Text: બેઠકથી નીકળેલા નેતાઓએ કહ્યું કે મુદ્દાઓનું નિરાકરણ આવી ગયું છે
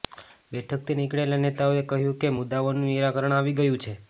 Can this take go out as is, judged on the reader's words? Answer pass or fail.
pass